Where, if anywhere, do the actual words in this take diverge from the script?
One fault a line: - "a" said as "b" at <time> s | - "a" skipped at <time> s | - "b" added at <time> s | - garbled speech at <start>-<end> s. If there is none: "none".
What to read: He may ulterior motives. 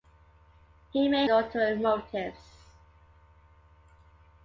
none